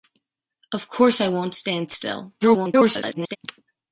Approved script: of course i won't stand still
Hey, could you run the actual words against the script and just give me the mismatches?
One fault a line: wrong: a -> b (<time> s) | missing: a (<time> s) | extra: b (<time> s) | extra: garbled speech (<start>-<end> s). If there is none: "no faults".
extra: garbled speech (2.4-3.4 s)